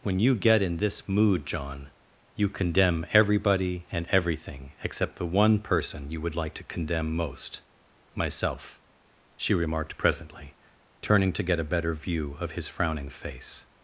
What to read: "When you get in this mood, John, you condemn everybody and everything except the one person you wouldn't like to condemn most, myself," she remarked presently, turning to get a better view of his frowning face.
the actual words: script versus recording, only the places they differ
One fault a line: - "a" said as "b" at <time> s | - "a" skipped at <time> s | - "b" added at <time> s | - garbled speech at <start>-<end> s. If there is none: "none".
- "wouldn't" said as "would" at 6.2 s